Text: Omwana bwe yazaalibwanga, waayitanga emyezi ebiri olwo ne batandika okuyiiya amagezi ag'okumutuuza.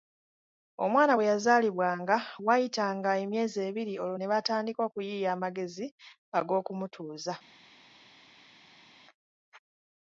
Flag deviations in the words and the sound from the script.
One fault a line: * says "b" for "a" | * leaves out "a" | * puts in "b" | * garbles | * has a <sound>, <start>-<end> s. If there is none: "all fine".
all fine